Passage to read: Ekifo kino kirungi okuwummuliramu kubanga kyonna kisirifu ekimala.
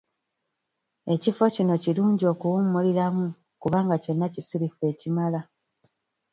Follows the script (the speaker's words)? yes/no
yes